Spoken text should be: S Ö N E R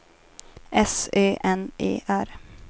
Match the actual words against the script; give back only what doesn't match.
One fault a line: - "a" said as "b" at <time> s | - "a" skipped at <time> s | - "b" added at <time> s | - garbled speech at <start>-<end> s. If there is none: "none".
none